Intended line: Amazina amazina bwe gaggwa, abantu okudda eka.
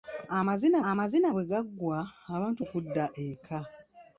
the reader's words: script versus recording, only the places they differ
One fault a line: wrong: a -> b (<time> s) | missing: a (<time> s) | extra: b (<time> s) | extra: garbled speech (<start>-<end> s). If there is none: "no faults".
no faults